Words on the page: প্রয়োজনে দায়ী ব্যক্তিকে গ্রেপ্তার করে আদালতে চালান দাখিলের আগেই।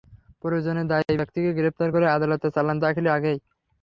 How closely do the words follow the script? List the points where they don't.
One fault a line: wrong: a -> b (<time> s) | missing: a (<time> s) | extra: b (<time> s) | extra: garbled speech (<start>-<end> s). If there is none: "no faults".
no faults